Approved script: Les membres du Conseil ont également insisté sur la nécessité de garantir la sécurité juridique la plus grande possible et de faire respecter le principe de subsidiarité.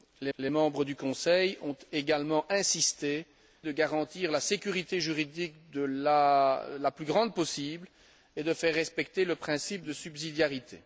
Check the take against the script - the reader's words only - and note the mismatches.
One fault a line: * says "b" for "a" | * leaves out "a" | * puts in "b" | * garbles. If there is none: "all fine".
* puts in "les"
* leaves out "sur la nécessité"